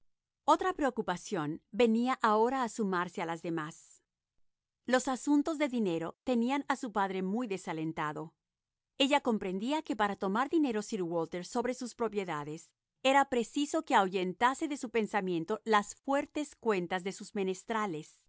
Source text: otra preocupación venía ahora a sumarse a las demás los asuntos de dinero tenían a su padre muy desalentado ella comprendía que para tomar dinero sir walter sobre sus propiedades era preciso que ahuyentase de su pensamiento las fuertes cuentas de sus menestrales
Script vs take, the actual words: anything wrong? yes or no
no